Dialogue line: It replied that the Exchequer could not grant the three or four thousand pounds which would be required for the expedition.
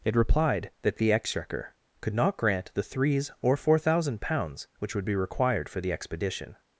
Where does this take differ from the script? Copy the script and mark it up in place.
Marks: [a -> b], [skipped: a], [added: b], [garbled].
It replied that the Exchequer could not grant the [three -> threes] or four thousand pounds which would be required for the expedition.